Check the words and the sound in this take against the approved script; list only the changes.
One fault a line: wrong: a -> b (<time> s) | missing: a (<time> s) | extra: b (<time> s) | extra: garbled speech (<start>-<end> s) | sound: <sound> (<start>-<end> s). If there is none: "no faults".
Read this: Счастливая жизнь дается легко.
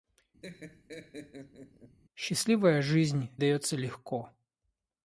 sound: laugh (0.4-2.0 s)